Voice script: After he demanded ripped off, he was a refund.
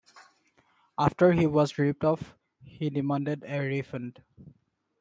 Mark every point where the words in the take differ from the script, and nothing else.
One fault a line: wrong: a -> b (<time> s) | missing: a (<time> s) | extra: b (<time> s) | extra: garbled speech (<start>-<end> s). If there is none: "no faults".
wrong: demanded -> was (1.4 s)
wrong: was -> demanded (2.9 s)